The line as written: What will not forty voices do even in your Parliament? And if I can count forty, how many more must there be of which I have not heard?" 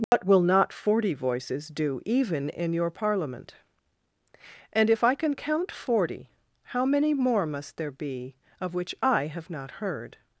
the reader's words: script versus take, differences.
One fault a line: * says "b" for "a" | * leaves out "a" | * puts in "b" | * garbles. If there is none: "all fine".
all fine